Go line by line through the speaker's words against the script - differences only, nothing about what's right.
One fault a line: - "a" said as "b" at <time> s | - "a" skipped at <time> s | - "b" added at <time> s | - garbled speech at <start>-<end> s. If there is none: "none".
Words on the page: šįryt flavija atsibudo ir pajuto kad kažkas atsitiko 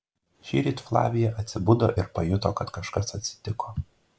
none